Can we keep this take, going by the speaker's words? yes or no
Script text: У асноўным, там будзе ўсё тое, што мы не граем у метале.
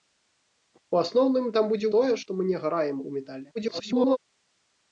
no